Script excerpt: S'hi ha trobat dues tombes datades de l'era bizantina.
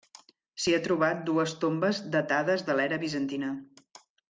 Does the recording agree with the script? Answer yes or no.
yes